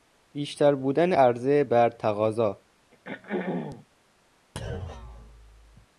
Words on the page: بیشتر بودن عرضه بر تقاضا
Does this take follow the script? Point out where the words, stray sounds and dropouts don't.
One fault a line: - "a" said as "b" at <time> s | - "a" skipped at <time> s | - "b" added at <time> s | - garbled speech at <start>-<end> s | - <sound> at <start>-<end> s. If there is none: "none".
- throat clearing at 2.9-3.9 s
- thud at 4.6-5.9 s